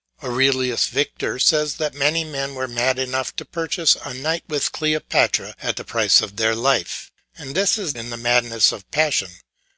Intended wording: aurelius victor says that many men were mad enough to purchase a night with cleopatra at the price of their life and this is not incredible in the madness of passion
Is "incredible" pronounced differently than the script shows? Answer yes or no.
yes